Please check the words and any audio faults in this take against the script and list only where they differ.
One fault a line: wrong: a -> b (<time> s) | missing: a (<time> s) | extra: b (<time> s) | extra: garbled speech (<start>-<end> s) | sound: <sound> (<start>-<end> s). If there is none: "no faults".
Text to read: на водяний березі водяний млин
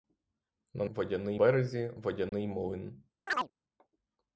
sound: dropout (2.3-2.3 s)
sound: chirp (3.3-3.5 s)